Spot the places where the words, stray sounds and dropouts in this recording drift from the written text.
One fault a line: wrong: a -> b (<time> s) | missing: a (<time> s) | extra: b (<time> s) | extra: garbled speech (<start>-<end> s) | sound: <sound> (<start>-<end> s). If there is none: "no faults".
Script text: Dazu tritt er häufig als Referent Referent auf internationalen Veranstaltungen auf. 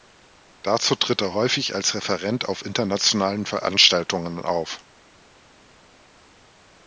missing: Referent (2.5 s)